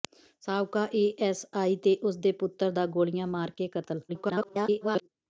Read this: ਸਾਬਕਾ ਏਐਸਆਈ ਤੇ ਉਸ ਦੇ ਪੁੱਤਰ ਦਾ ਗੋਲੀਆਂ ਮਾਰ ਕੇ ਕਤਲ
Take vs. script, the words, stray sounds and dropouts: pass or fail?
fail